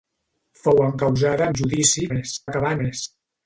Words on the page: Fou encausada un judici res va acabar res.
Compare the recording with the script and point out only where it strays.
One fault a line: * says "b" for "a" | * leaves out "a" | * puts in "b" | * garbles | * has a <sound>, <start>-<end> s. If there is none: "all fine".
all fine